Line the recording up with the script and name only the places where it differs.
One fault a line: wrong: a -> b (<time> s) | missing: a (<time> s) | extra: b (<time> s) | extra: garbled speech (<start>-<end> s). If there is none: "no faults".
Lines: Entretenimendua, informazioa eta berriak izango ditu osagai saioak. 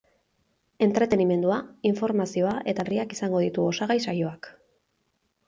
no faults